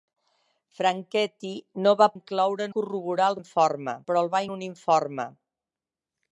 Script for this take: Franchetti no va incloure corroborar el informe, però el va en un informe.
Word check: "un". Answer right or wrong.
right